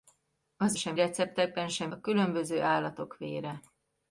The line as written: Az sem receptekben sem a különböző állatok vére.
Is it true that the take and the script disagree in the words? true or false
false